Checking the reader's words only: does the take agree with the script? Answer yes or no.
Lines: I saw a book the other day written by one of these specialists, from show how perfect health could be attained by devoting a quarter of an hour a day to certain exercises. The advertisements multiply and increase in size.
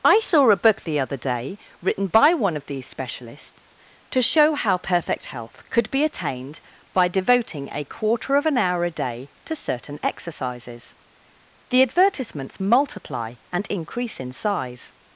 no